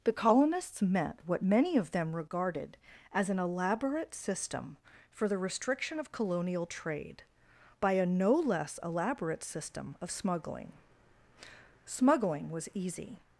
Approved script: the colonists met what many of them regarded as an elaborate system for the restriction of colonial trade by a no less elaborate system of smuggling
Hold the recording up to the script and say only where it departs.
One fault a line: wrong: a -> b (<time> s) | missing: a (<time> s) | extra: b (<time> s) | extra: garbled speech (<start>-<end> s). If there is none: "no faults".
extra: smuggling was easy (11.8 s)